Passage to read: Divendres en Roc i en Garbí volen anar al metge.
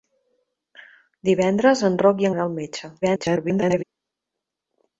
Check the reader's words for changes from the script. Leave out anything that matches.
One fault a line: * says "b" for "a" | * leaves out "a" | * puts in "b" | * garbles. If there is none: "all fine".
* leaves out "en Garbí volen"
* garbles